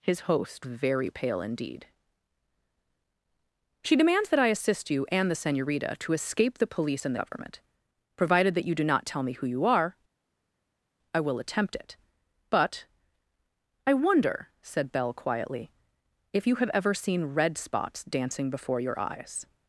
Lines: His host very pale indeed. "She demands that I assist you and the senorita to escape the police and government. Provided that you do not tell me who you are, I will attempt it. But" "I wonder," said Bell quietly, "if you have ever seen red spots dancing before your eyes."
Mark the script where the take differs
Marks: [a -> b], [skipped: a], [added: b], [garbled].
His host very pale indeed. "She demands that I assist you and the senorita to escape the police and government. Provided that you do not tell me who you are, I will attempt it. But" "I wonder," said Bell quietly, "if you have ever seen red spots dancing before your eyes."